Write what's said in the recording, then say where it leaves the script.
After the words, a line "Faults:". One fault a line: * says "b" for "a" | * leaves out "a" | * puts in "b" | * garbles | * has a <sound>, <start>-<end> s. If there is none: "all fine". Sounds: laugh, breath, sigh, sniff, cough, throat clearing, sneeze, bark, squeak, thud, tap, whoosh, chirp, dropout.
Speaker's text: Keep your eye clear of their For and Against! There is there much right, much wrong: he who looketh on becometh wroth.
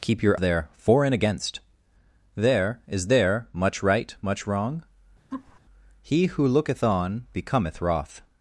Keep your their For and Against! There is there much right, much wrong: he who looketh on becometh wroth.
Faults:
* leaves out "eye clear of"
* has a laugh, 5.3-5.6 s